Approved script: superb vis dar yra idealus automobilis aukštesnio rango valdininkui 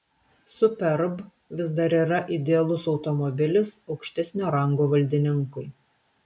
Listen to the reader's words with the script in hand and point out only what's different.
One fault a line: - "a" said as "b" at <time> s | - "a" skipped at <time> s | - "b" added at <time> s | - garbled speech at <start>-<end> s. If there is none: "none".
none